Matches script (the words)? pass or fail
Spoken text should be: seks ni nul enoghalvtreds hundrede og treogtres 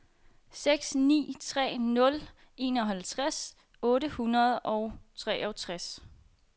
fail